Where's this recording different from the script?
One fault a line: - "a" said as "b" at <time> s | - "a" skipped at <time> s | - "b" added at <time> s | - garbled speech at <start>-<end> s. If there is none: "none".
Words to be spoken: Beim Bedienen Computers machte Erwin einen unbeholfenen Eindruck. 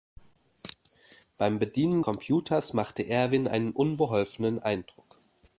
none